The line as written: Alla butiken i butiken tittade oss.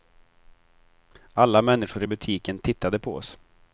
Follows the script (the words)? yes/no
no